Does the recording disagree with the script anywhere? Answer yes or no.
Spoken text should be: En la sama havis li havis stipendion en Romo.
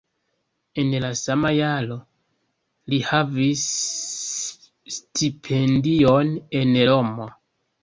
yes